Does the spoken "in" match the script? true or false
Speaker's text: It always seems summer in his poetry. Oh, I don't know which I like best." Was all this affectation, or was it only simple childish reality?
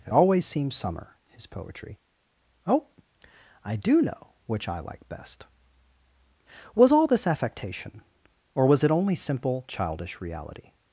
false